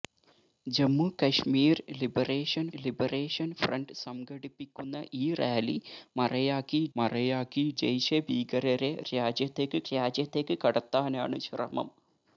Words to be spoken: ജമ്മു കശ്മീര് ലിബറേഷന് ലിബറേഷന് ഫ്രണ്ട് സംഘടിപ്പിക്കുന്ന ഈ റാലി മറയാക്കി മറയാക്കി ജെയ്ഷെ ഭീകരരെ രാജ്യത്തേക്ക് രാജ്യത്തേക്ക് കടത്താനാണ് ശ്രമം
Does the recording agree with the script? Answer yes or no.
yes